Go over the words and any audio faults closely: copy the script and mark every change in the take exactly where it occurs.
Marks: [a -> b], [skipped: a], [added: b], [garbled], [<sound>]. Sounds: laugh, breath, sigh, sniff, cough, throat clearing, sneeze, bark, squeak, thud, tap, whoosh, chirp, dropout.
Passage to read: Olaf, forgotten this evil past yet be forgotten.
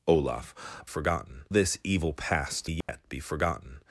Olaf, forgotten this evil past yet [dropout] be forgotten.